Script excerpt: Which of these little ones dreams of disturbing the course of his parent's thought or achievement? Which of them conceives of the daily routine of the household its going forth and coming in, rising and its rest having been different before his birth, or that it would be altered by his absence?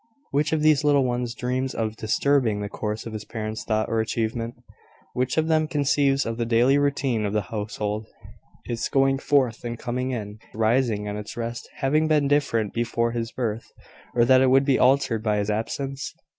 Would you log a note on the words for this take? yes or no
no